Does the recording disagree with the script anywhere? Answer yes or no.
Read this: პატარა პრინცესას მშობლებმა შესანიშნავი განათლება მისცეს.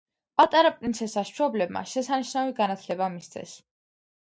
no